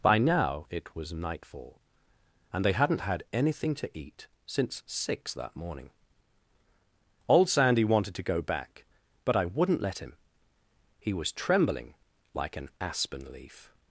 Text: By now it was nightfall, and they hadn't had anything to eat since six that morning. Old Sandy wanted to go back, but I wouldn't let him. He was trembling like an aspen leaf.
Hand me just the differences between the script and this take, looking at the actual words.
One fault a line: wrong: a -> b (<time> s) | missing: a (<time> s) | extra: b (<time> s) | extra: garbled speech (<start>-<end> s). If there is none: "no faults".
no faults